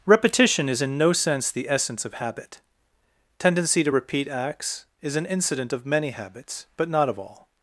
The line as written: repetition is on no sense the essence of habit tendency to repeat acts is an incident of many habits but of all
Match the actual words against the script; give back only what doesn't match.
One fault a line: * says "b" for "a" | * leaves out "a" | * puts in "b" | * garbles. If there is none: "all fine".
* says "in" for "on"
* puts in "not"